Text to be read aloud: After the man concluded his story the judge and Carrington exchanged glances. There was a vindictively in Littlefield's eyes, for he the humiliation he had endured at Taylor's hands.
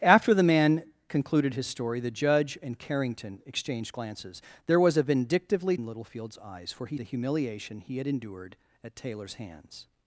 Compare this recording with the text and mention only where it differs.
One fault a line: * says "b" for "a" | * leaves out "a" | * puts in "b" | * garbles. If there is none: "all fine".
all fine